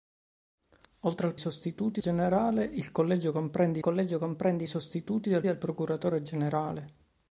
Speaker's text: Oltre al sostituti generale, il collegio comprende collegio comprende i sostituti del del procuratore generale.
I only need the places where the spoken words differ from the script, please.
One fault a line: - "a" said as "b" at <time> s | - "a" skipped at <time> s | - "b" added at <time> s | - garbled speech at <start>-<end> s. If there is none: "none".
none